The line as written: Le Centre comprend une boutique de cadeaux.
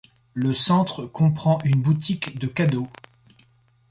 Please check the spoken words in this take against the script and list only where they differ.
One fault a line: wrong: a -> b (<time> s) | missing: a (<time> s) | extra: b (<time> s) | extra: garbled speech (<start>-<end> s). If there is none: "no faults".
no faults